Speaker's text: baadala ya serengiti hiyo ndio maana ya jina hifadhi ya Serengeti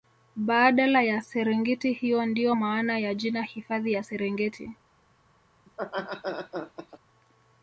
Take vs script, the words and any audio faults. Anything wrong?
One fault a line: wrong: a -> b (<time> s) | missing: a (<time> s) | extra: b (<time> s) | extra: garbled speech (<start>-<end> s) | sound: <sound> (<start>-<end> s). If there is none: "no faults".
sound: laugh (5.7-7.0 s)